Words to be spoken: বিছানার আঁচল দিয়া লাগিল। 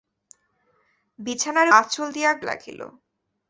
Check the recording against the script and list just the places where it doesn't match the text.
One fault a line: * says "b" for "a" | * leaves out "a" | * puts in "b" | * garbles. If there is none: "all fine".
all fine